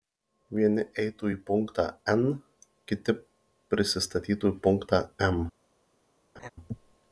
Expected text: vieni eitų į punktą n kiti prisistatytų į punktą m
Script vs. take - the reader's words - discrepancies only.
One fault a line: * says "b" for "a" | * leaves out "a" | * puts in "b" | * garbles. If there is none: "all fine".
all fine